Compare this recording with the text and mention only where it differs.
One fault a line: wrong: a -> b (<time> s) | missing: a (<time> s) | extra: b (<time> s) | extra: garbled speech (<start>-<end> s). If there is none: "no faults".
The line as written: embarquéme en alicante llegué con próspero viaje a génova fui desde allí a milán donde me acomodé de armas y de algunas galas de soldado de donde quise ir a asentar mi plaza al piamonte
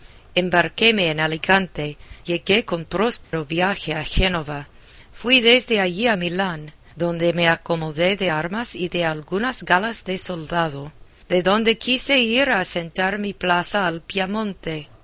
no faults